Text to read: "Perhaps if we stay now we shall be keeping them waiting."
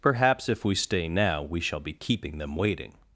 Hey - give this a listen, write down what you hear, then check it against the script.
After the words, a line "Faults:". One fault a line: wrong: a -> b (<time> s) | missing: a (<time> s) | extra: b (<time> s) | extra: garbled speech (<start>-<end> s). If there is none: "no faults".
"Perhaps if we stay now we shall be keeping them waiting."
Faults:
no faults